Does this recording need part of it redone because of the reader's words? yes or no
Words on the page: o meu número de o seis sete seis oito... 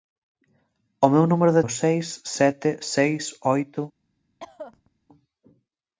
no